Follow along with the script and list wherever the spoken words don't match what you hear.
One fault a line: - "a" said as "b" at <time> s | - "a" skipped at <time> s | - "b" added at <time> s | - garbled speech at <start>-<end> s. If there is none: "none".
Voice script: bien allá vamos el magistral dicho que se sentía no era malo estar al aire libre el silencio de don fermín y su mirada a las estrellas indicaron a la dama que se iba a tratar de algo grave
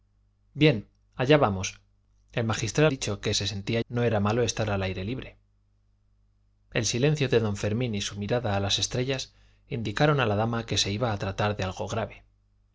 none